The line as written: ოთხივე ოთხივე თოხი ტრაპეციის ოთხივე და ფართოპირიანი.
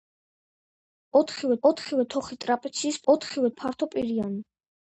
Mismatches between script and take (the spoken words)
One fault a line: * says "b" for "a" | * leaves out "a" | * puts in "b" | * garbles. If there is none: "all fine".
all fine